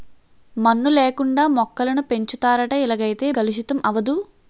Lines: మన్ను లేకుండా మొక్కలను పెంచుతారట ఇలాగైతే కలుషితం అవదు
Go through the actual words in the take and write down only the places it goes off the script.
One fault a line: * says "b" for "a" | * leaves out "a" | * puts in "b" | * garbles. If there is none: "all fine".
all fine